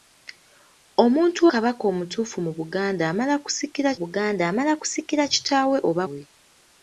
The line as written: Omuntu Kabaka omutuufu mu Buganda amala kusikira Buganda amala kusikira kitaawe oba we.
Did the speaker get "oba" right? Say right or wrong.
right